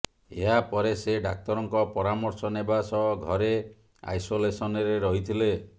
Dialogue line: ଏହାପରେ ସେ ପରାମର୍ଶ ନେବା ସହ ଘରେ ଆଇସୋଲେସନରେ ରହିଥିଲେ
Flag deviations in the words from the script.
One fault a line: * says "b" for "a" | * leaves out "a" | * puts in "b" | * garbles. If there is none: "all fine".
* puts in "ଡାକ୍ତରଙ୍କ"